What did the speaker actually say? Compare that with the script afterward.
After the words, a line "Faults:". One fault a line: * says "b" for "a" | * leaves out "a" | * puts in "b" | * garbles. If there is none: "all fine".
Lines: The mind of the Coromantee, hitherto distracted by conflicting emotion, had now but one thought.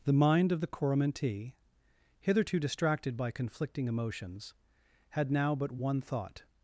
The mind of the Coromantee, hitherto distracted by conflicting emotions, had now but one thought.
Faults:
* says "emotions" for "emotion"